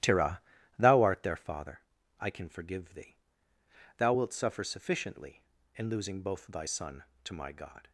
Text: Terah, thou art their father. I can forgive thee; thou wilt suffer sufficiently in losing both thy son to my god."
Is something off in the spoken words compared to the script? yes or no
no